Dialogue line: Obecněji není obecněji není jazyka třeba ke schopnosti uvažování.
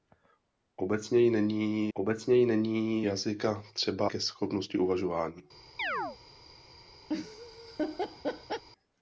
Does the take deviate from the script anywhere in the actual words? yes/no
no